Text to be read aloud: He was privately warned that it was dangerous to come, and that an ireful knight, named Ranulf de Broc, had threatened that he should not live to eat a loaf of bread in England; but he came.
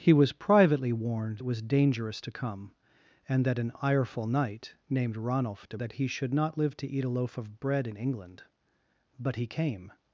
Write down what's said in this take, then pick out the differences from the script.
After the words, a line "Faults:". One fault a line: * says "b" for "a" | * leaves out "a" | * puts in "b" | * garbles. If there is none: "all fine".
He was privately warned it was dangerous to come, and that an ireful knight, named Ranulf de That he should not live to eat a loaf of bread in England; but he came.
Faults:
* leaves out "that"
* leaves out "Broc had threatened"